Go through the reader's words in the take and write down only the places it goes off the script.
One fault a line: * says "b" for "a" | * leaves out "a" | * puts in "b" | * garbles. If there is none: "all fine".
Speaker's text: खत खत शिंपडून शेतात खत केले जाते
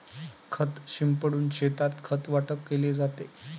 * leaves out "खत"
* puts in "वाटप"